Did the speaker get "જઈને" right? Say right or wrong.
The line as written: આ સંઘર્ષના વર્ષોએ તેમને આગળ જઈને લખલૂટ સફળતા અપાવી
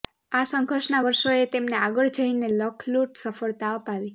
right